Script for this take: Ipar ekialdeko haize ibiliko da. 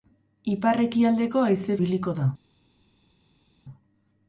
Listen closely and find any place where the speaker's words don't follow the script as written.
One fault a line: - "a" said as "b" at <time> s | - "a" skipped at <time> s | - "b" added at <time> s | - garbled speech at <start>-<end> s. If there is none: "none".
none